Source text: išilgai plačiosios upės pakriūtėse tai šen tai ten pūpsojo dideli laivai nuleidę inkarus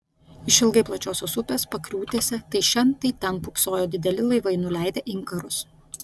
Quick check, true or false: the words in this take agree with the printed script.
true